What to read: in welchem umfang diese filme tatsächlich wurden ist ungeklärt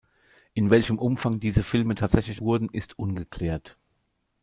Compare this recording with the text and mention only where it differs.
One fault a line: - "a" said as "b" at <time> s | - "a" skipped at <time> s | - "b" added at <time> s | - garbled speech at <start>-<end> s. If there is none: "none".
none